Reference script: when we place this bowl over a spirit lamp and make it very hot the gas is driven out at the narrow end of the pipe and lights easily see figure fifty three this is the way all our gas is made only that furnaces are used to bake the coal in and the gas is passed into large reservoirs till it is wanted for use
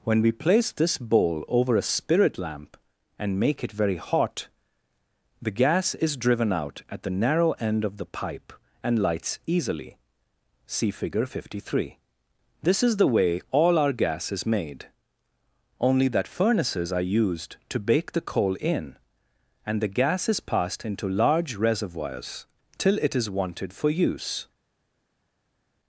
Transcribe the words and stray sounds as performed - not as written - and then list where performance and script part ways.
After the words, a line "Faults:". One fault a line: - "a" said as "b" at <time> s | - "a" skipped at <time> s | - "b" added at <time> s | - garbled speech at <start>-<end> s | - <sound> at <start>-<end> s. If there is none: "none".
when we place this bowl over a spirit lamp and make it very hot the gas is driven out at the narrow end of the pipe and lights easily see figure fifty three this is the way all our gas is made only that furnaces are used to bake the coal in and the gas is passed into large reservoirs till it is wanted for use
Faults:
none